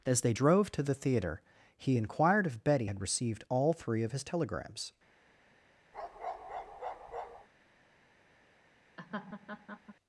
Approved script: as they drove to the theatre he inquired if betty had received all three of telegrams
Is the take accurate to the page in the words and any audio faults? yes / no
no